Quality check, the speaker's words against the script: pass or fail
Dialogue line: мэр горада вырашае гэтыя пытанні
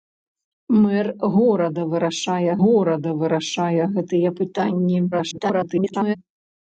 fail